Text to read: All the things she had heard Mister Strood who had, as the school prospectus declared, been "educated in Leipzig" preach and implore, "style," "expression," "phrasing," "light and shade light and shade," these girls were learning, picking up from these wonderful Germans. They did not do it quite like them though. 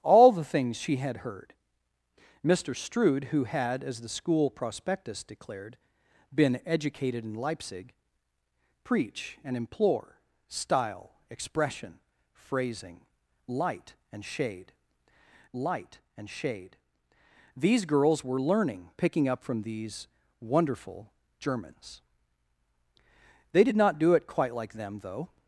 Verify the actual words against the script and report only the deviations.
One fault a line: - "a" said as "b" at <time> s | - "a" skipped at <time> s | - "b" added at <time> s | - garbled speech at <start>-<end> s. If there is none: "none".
none